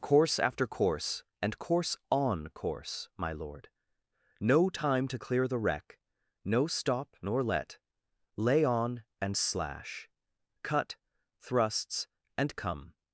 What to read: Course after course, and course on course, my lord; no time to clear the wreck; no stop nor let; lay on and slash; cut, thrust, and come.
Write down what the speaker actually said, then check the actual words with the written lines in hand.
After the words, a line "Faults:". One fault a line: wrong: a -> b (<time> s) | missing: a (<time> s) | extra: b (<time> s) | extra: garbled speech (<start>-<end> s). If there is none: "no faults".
Course after course, and course on course, my lord; no time to clear the wreck; no stop nor let; lay on and slash; cut, thrusts, and come.
Faults:
wrong: thrust -> thrusts (11.4 s)